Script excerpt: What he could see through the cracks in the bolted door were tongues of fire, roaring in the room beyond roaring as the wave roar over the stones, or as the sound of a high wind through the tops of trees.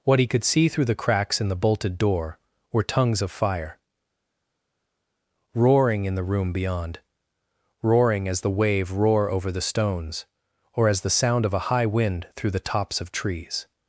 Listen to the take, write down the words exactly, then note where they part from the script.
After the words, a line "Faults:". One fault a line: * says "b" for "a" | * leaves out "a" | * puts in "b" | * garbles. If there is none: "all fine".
What he could see through the cracks in the bolted door were tongues of fire, roaring in the room beyond roaring as the wave roar over the stones, or as the sound of a high wind through the tops of trees.
Faults:
all fine